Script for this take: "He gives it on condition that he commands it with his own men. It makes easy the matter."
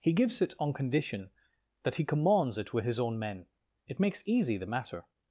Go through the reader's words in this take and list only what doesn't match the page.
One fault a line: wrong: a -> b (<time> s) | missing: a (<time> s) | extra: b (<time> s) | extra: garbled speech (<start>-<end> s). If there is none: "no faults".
no faults